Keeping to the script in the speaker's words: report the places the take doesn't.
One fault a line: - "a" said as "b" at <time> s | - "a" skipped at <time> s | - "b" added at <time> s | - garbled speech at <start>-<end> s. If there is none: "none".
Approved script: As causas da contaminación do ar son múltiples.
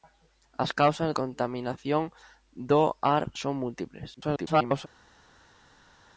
- "da" skipped at 1.1 s
- garbled speech at 4.2-4.9 s